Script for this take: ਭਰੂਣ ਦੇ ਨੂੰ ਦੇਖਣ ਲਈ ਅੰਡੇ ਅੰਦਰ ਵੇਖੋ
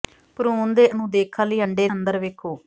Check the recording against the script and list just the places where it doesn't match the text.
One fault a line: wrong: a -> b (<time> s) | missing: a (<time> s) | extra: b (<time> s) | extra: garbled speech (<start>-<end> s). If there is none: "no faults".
no faults